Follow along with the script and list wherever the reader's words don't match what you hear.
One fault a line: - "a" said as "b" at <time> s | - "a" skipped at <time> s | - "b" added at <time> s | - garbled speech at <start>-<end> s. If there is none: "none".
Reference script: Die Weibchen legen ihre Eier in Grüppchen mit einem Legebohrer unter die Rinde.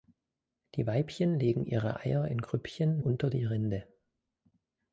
- "mit einem Legebohrer" skipped at 3.0 s